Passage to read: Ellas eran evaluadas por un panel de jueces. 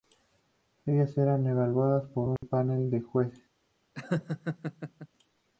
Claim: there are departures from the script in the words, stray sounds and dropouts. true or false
true